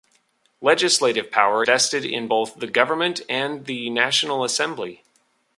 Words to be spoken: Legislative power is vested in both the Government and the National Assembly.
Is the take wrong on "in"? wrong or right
right